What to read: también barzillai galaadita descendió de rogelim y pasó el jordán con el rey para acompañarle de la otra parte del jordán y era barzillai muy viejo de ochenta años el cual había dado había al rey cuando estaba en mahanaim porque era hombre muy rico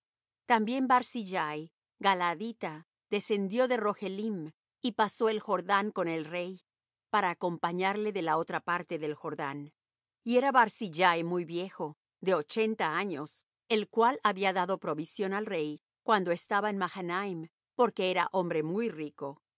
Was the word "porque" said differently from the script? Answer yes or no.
no